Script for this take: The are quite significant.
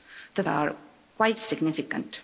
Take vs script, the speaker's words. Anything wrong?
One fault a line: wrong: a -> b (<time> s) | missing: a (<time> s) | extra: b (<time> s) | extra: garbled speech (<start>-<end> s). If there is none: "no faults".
no faults